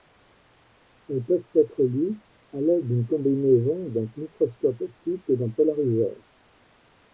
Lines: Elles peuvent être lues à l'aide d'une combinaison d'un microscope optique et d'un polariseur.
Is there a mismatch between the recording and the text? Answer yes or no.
no